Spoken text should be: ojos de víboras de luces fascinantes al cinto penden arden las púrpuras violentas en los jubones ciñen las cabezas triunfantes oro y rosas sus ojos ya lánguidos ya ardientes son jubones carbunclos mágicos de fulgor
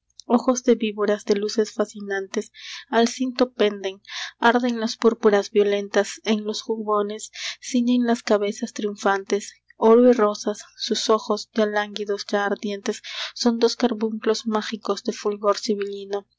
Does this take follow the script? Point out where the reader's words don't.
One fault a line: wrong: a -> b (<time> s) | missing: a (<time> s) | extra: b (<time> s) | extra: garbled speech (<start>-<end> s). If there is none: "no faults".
wrong: jubones -> dos (13.6 s)